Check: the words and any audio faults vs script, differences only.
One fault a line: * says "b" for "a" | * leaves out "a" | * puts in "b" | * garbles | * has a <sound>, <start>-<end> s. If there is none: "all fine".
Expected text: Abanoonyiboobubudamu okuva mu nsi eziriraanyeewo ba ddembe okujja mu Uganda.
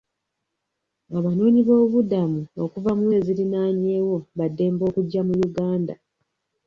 * leaves out "nsi"